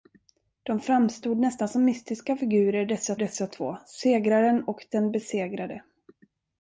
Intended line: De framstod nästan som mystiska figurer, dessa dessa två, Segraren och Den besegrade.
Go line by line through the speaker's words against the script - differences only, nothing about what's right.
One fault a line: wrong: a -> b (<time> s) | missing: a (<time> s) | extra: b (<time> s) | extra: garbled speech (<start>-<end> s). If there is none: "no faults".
no faults